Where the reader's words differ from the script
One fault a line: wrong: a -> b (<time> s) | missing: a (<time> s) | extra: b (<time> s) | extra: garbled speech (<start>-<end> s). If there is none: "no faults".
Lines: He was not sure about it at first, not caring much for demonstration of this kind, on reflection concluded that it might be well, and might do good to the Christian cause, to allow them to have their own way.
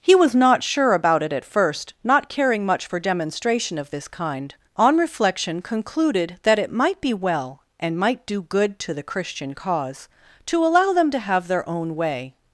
no faults